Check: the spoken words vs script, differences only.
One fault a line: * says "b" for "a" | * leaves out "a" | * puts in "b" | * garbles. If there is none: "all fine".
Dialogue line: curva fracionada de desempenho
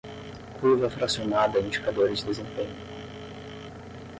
* puts in "indicadores"